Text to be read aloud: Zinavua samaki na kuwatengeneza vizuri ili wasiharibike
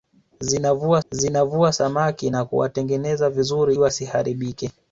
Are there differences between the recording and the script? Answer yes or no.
yes